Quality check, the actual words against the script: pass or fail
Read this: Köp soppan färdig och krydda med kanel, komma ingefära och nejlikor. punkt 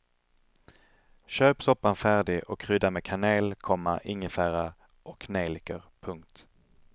pass